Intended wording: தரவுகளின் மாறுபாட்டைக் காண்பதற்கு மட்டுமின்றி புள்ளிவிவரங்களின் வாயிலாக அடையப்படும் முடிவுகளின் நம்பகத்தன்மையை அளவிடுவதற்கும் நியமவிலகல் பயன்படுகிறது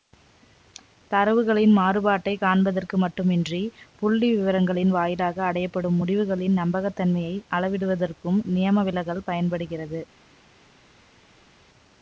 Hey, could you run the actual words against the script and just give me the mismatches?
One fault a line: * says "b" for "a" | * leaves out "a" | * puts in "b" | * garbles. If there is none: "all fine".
all fine